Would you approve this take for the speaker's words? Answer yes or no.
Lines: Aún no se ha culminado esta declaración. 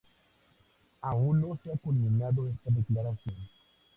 yes